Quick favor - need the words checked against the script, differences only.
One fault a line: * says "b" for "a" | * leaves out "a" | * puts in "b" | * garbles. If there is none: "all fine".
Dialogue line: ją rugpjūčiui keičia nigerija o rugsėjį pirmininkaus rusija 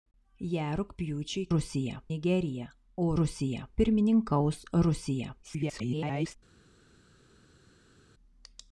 * says "rusija" for "keičia"
* says "rusija" for "rugsėjį"
* garbles